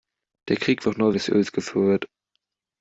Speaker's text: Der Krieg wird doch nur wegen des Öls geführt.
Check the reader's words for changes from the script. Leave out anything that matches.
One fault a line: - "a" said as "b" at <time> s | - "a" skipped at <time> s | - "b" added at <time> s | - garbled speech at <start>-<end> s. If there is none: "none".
- "wird" skipped at 0.9 s
- "wegen" skipped at 1.1 s